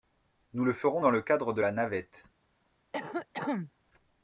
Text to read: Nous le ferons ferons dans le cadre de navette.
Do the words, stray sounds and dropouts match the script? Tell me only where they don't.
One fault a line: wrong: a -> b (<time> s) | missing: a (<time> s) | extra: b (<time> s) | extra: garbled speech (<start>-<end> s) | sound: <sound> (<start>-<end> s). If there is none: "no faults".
missing: ferons (1.0 s)
extra: la (1.6 s)
sound: cough (2.9-3.7 s)